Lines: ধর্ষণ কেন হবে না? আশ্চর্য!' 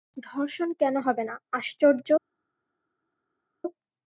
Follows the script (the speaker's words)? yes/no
yes